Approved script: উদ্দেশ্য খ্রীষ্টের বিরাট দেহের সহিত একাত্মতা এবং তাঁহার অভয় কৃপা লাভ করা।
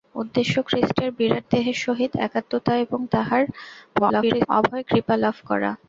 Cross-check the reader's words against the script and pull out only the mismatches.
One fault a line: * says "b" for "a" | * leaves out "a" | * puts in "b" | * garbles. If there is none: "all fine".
* garbles